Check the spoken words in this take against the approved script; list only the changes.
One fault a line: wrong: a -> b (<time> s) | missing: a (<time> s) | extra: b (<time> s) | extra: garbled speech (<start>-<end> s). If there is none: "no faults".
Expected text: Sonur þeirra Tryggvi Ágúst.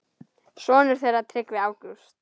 no faults